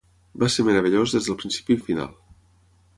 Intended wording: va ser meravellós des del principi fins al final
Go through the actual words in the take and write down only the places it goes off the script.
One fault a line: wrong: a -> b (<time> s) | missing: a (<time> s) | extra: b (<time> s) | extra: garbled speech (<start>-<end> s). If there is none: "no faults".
missing: fins (1.8 s)